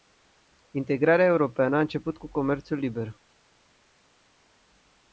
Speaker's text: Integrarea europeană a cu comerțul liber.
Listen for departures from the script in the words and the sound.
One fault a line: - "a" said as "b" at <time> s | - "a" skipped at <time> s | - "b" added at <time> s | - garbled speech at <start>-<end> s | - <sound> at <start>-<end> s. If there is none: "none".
- "început" added at 1.8 s